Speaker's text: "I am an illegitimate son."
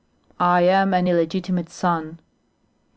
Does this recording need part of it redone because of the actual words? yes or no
no